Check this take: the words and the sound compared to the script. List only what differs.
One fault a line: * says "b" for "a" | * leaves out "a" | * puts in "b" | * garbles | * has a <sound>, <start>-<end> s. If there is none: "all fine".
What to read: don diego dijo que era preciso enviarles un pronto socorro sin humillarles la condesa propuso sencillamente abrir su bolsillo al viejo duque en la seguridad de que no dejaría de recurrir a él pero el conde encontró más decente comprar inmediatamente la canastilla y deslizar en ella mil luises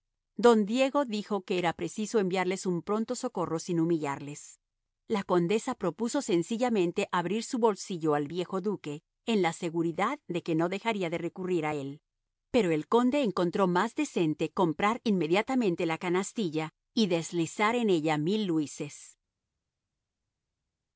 all fine